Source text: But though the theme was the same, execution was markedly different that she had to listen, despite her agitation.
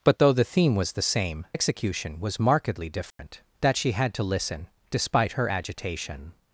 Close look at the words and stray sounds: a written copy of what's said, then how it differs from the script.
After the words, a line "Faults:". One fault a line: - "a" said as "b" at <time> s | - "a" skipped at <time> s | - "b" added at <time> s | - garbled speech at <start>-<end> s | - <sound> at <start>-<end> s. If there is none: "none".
But though the theme was the same, execution was markedly different that she had to listen, despite her agitation.
Faults:
- dropout at 3.1-3.2 s